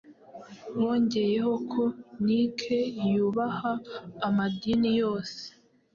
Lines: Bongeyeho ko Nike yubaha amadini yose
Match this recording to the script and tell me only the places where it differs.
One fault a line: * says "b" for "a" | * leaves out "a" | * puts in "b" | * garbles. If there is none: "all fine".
all fine